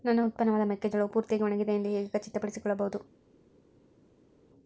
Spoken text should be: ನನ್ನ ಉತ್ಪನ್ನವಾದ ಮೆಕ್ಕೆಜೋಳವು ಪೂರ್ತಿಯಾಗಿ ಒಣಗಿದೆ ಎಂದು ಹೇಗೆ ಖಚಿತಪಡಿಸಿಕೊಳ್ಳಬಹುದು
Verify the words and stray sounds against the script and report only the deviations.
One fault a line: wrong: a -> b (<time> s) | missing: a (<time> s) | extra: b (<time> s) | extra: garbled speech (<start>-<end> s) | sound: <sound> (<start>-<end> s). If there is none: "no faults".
no faults